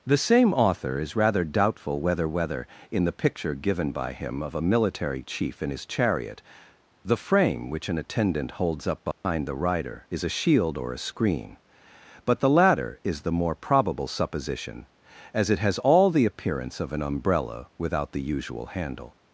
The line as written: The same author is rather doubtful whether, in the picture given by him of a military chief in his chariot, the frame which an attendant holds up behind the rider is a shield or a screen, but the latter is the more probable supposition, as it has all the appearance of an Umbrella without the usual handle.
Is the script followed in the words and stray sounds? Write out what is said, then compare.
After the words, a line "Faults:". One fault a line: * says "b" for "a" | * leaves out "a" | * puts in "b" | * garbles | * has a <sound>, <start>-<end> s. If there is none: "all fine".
The same author is rather doubtful whether whether, in the picture given by him of a military chief in his chariot, the frame which an attendant holds up behind the rider is a shield or a screen, but the latter is the more probable supposition, as it has all the appearance of an Umbrella without the usual handle.
Faults:
* puts in "whether"
* has a dropout, 9.1-9.2 s